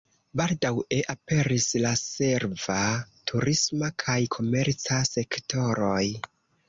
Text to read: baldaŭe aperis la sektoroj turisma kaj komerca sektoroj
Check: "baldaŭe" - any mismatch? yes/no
no